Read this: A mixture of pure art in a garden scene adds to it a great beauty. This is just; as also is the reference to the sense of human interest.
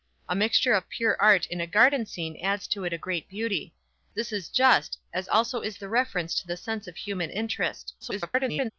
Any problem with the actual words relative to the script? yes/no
yes